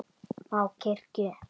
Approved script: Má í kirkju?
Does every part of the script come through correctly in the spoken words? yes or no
yes